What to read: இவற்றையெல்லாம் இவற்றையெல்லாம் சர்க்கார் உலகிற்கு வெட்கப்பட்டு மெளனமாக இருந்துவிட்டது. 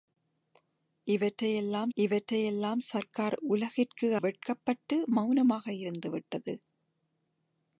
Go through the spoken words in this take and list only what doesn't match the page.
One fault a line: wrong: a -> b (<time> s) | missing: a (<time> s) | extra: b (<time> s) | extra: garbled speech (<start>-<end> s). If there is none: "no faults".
no faults